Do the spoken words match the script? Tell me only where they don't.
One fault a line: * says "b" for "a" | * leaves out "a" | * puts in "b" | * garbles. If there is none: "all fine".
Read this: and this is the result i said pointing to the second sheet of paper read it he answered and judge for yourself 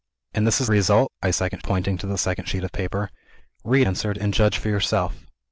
* leaves out "the"
* says "second" for "said"
* leaves out "it he"